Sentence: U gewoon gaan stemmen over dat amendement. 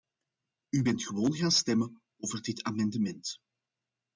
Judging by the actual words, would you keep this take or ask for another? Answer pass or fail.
fail